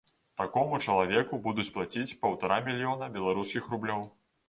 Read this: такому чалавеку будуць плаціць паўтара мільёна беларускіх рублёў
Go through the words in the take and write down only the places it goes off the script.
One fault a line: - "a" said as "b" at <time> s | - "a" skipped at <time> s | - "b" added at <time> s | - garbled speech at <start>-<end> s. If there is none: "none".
none